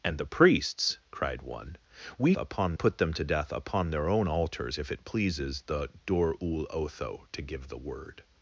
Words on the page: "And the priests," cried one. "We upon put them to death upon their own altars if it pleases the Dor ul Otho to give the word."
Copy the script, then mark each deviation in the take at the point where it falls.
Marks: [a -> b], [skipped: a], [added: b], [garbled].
"And the priests," cried one. "We upon put them to death upon their own altars if it pleases the Dor ul Otho to give the word."